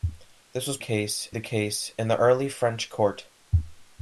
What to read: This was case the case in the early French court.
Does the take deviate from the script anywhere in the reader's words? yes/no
no